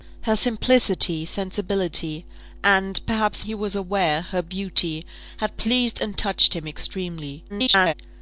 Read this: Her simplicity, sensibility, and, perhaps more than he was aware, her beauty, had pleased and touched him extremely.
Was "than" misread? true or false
true